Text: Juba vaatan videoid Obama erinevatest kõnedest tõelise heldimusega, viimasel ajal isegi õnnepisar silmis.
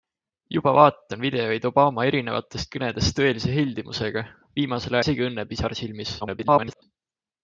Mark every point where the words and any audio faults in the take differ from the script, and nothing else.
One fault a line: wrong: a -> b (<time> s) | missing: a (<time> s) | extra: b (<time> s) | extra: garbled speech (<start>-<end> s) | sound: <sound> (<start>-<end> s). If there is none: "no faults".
missing: ajal (5.0 s)
extra: garbled speech (6.2-6.8 s)